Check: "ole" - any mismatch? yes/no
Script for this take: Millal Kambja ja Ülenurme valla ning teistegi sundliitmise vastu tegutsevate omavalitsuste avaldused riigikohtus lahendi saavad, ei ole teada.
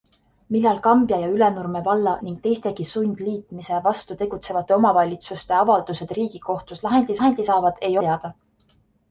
yes